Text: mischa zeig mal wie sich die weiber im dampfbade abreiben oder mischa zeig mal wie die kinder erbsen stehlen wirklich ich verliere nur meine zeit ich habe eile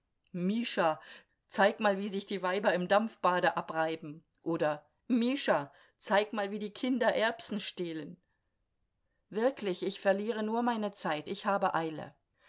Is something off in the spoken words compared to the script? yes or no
no